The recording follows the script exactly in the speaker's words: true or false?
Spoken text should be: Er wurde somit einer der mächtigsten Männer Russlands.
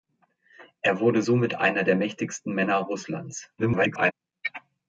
false